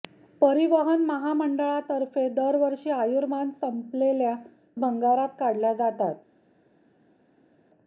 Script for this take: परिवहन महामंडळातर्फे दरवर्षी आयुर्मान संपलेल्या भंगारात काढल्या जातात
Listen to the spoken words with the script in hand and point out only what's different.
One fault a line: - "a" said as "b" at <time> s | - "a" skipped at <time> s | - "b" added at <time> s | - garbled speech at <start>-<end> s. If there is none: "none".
none